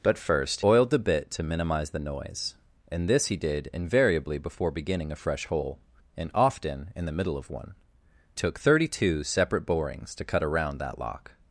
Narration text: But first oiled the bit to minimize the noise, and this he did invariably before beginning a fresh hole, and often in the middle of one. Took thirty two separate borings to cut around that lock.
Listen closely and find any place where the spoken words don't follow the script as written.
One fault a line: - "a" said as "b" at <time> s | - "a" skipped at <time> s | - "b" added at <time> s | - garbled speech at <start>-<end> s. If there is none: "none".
none